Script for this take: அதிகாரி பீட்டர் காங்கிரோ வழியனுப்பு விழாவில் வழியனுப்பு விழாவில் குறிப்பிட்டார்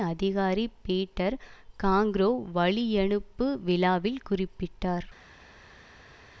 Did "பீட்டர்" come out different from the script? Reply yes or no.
no